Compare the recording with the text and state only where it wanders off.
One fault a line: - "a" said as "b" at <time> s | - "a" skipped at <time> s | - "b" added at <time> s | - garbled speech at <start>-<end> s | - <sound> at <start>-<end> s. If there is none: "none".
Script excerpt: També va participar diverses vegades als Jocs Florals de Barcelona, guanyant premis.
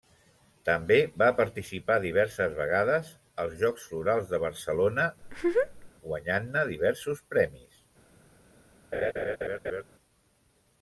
- laugh at 5.2-5.9 s
- "ne diversos" added at 6.6 s
- laugh at 8.9-9.8 s